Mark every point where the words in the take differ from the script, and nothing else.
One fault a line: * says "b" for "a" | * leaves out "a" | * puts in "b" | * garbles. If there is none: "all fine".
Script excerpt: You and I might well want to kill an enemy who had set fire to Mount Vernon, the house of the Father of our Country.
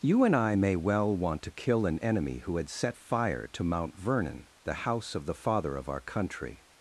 * says "may" for "might"